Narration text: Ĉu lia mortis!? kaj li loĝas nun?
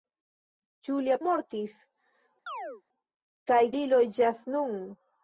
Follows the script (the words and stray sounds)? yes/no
no